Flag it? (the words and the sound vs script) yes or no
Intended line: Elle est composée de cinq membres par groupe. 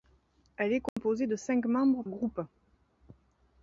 yes